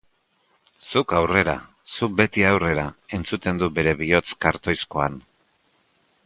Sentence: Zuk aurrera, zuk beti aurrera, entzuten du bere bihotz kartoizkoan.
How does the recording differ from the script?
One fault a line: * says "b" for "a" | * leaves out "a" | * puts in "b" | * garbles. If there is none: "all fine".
all fine